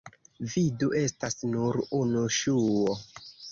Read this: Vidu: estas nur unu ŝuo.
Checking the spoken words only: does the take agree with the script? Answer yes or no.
yes